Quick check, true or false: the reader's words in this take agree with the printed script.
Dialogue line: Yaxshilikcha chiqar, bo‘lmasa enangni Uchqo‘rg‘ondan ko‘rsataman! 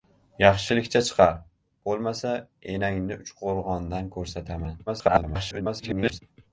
false